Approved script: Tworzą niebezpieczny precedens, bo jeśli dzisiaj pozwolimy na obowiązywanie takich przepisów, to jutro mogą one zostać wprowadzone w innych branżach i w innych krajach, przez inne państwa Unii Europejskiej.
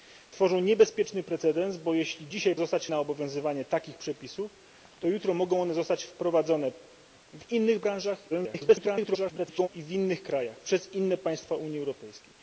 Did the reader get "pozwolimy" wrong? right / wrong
wrong